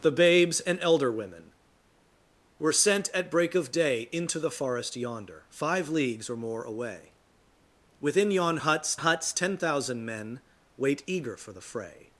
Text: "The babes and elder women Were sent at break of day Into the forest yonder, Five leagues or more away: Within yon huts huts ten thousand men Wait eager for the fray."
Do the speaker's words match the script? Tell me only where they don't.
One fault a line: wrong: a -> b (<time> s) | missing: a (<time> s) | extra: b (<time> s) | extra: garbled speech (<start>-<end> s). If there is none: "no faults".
no faults